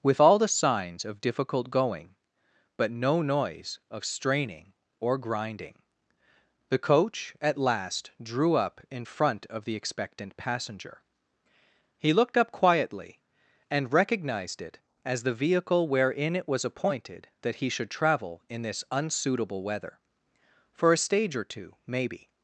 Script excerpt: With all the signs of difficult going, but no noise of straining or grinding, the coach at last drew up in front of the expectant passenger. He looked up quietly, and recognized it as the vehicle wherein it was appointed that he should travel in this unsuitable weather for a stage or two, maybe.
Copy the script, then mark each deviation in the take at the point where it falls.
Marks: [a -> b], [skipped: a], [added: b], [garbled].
With all the signs of difficult going, but no noise of straining or grinding, the coach at last drew up in front of the expectant passenger. He looked up quietly, and recognized it as the vehicle wherein it was appointed that he should travel in this unsuitable weather for a stage or two, maybe.